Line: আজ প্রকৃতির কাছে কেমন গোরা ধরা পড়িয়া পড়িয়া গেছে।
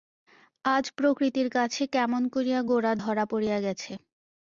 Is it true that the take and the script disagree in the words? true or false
true